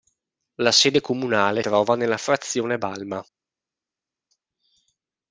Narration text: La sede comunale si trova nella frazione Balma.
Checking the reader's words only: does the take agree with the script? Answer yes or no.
no